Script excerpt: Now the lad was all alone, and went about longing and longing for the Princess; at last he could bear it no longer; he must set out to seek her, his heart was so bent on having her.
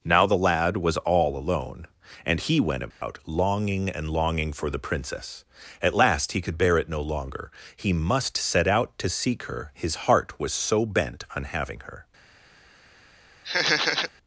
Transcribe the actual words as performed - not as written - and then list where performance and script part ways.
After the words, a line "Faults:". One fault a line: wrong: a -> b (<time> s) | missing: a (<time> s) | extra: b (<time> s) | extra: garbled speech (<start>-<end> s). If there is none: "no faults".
Now the lad was all alone, and he went about longing and longing for the Princess; at last he could bear it no longer; he must set out to seek her, his heart was so bent on having her.
Faults:
extra: he (2.4 s)